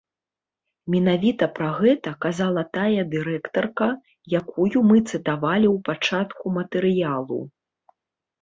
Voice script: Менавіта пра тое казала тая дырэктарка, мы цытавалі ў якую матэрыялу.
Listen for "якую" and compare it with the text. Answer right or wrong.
wrong